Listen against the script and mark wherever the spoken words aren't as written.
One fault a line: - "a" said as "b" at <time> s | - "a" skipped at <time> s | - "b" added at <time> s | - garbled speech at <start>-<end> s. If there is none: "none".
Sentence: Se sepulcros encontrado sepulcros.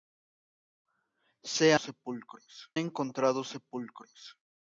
none